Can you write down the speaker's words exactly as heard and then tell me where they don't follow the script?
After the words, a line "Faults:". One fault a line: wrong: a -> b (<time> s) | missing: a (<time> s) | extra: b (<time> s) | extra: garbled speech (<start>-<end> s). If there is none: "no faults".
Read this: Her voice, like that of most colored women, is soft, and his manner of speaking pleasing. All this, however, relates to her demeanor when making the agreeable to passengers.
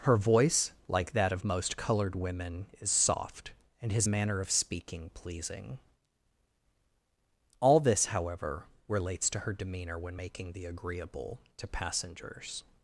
Her voice, like that of most colored women, is soft, and his manner of speaking pleasing. All this, however, relates to her demeanor when making the agreeable to passengers.
Faults:
no faults